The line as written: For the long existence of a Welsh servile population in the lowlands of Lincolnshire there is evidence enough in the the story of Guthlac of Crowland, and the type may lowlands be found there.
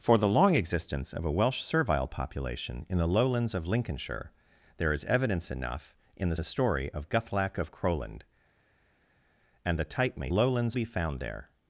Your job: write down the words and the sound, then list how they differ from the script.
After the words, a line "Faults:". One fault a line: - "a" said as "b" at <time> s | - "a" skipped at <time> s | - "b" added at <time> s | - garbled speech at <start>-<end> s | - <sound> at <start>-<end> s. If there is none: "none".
For the long existence of a Welsh servile population in the lowlands of Lincolnshire there is evidence enough in the the story of Guthlac of Crowland, and the type may lowlands be found there.
Faults:
none